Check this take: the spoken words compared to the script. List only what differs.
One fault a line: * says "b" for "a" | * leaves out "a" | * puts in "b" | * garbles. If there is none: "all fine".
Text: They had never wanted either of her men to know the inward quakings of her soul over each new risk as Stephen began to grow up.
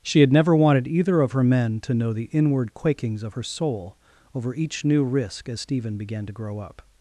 * says "She" for "They"